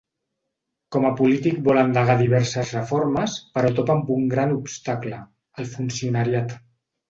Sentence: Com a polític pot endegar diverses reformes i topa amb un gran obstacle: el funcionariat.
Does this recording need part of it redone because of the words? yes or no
yes